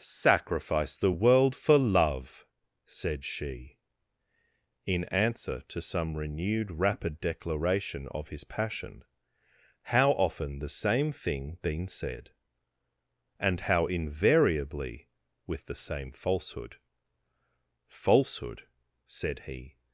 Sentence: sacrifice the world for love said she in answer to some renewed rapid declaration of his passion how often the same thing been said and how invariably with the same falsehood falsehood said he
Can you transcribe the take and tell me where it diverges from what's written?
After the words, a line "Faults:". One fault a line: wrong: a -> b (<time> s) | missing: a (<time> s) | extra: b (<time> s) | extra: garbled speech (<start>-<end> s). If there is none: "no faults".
sacrifice the world for love said she in answer to some renewed rapid declaration of his passion how often the same thing been said and how invariably with the same falsehood falsehood said he
Faults:
no faults